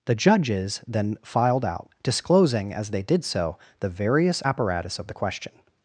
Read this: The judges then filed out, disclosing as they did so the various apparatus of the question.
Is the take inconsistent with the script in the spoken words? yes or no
no